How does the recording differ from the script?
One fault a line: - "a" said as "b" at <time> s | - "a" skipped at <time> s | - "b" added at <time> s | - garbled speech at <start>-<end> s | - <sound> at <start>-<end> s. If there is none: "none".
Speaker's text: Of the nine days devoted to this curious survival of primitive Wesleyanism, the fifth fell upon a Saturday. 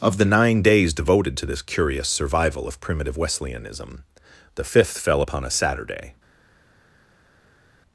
none